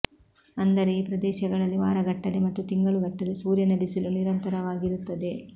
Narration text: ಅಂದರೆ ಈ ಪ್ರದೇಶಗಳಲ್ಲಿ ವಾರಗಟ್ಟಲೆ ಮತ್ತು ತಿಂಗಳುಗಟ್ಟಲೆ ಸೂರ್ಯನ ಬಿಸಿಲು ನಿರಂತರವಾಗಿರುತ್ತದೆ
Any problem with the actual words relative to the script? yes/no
no